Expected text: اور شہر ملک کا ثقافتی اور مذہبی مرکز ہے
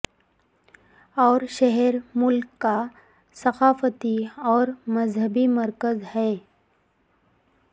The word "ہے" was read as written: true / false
true